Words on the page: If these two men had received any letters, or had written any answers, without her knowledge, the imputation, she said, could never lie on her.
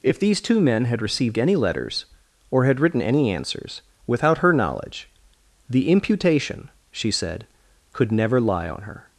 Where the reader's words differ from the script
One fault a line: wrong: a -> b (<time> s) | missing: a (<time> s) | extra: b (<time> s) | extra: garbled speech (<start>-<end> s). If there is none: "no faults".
no faults